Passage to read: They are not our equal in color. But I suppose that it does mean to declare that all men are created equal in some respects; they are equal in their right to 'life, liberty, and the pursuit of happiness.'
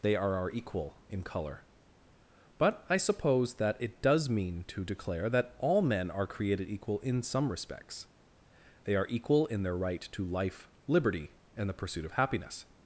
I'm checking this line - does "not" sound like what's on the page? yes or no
no